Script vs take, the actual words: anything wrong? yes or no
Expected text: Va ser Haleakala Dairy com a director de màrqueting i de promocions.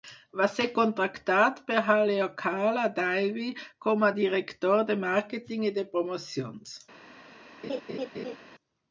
yes